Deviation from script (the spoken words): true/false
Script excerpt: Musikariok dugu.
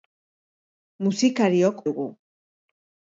false